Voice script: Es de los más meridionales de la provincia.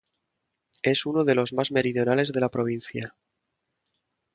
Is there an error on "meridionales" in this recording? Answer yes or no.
no